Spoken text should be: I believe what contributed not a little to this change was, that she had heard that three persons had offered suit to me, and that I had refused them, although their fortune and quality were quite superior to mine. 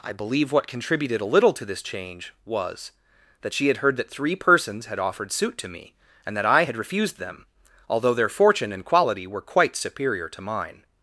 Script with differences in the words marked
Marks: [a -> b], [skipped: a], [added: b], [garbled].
I believe what contributed [skipped: not] a little to this change was, that she had heard that three persons had offered suit to me, and that I had refused them, although their fortune and quality were quite superior to mine.